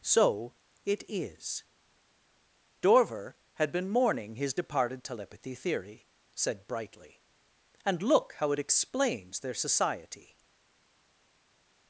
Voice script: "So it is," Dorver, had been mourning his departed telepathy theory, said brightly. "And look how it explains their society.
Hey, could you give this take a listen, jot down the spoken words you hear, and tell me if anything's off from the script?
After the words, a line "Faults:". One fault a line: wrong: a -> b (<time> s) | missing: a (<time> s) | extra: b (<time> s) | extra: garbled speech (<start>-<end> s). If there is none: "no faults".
"So it is," Dorver, had been mourning his departed telepathy theory, said brightly. "And look how it explains their society.
Faults:
no faults